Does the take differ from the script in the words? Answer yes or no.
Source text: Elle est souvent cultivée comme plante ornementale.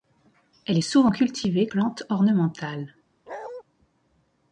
yes